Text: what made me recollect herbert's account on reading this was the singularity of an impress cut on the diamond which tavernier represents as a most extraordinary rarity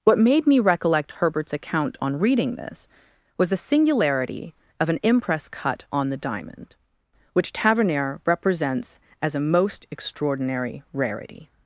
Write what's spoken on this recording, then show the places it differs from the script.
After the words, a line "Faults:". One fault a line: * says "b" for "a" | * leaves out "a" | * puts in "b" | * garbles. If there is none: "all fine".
what made me recollect herbert's account on reading this was the singularity of an impress cut on the diamond which tavernier represents as a most extraordinary rarity
Faults:
all fine